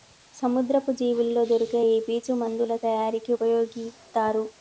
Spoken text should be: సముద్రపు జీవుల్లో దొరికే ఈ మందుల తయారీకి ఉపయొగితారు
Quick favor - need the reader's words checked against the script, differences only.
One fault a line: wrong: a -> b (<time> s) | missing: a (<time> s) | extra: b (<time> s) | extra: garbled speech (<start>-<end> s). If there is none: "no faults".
extra: పీచు (2.1 s)